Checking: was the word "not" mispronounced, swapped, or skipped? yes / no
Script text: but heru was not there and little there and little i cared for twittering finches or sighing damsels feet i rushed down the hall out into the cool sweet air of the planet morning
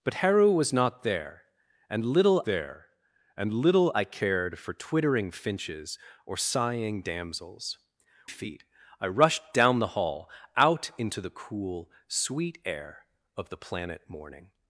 no